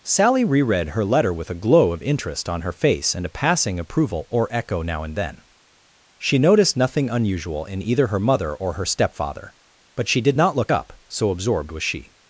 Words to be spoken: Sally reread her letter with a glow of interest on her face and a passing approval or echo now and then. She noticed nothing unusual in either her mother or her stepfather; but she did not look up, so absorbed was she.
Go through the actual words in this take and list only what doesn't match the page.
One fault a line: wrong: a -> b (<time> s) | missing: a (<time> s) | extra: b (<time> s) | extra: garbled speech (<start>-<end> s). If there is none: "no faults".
no faults